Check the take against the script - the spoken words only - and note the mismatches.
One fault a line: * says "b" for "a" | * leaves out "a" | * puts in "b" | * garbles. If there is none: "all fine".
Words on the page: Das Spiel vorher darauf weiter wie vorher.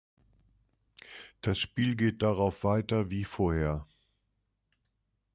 * says "geht" for "vorher"